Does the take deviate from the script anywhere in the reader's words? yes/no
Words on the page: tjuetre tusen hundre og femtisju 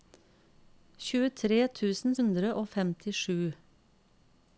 no